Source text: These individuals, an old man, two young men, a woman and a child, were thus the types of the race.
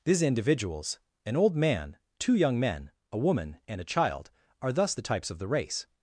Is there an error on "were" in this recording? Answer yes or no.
yes